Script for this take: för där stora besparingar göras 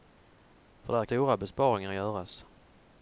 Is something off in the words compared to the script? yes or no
no